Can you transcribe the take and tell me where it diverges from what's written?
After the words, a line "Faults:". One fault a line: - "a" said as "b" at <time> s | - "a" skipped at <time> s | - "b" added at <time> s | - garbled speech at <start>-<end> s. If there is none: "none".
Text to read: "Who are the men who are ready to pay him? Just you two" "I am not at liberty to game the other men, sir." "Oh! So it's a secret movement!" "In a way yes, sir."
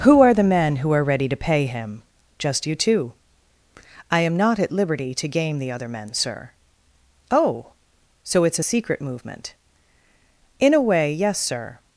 "Who are the men who are ready to pay him? Just you two" "I am not at liberty to game the other men, sir." "Oh! So it's a secret movement!" "In a way yes, sir."
Faults:
none